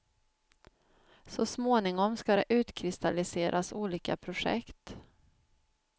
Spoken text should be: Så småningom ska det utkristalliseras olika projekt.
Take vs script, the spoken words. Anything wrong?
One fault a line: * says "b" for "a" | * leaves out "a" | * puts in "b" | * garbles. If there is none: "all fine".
all fine